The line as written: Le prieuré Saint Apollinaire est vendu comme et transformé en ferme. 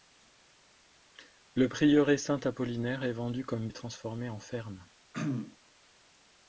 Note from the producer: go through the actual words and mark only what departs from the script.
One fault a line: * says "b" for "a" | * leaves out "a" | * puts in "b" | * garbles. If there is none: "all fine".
all fine